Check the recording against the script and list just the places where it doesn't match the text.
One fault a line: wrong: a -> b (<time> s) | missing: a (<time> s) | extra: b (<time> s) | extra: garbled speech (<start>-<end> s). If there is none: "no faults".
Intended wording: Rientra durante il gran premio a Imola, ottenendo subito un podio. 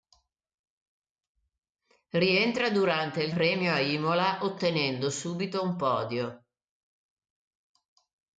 missing: gran (3.3 s)